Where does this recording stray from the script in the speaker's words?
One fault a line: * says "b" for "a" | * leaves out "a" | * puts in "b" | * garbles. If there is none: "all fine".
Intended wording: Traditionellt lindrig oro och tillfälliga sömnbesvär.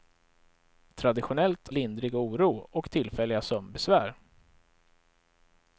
all fine